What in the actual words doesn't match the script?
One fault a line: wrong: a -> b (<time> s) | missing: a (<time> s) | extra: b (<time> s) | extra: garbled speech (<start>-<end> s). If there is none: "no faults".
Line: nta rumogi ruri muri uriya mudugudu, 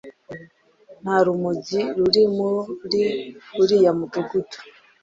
no faults